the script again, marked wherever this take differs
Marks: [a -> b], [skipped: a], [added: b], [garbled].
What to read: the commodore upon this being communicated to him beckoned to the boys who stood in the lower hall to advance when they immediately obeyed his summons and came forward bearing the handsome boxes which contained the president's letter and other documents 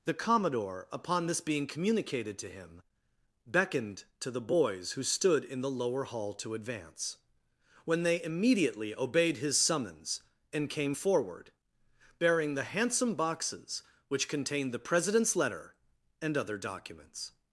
the commodore upon this being communicated to him beckoned to the boys who stood in the lower hall to advance when they immediately obeyed his summons and came forward bearing the handsome boxes which contained the president's letter and other documents